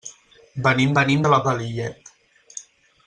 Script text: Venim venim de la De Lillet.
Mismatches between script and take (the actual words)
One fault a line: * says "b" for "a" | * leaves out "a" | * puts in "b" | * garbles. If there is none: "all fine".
all fine